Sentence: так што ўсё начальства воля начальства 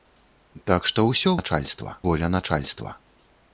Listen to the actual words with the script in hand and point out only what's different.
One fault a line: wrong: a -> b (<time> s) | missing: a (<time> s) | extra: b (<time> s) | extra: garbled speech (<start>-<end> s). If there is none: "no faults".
no faults